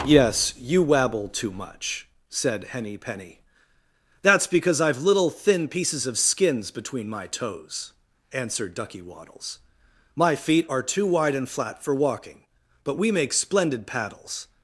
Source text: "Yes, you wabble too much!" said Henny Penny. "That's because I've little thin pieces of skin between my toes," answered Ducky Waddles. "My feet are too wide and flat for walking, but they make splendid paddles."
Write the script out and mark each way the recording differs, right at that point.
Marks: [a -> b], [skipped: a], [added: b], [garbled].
"Yes, you wabble too much!" said Henny Penny. "That's because I've little thin pieces of [skin -> skins] between my toes," answered Ducky Waddles. "My feet are too wide and flat for walking, but [they -> we] make splendid paddles."